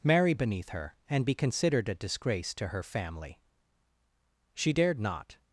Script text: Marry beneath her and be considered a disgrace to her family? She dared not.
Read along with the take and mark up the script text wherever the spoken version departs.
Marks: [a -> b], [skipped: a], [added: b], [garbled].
Marry beneath her and be considered a disgrace to her family? She dared not.